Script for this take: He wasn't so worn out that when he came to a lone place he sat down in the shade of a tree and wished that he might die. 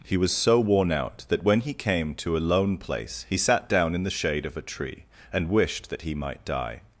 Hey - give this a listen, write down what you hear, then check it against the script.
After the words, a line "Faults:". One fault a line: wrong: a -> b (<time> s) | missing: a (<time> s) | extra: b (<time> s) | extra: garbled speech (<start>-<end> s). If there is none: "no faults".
He was so worn out that when he came to a lone place he sat down in the shade of a tree and wished that he might die.
Faults:
wrong: wasn't -> was (0.2 s)